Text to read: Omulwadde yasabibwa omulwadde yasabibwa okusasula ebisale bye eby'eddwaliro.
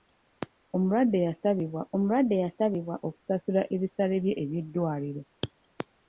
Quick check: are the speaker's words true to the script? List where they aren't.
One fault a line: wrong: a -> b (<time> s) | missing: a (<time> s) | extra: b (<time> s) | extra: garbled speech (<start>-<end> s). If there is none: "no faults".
no faults